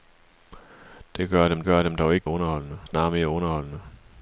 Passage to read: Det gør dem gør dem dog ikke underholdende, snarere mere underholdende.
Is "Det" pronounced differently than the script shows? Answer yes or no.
no